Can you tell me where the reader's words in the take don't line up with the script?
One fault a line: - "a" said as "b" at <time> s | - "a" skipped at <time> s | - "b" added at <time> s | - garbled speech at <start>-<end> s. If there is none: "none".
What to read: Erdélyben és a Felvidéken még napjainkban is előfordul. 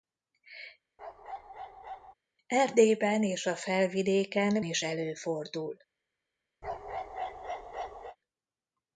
- "még napjainkban" skipped at 4.6 s